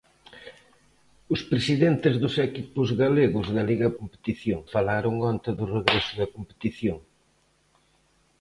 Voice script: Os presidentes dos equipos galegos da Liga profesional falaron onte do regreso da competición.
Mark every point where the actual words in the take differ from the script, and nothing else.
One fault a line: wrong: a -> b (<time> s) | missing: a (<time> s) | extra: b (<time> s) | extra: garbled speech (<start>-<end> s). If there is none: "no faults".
wrong: profesional -> competición (4.0 s)